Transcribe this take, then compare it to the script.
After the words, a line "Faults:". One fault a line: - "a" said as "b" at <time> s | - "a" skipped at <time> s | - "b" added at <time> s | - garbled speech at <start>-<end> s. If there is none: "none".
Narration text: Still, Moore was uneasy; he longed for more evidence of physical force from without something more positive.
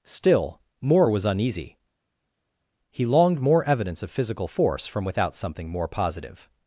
Still, Moore was uneasy; he longed more evidence of physical force from without something more positive.
Faults:
- "for" skipped at 3.4 s